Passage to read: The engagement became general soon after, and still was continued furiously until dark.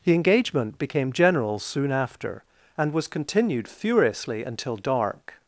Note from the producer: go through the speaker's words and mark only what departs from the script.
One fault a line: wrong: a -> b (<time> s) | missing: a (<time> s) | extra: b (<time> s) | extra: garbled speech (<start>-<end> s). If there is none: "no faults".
missing: still (2.9 s)